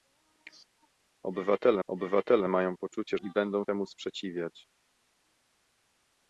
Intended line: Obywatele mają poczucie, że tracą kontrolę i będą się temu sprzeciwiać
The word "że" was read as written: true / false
false